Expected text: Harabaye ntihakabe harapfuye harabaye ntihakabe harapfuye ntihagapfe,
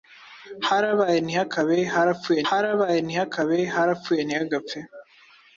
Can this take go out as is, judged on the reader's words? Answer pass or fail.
pass